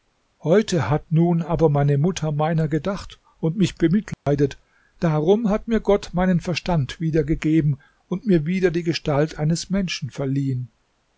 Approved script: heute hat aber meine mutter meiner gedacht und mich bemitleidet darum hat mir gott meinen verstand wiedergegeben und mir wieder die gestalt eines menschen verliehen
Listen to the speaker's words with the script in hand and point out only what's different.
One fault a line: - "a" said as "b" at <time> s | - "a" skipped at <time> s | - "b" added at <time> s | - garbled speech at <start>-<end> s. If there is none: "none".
- "nun" added at 1.1 s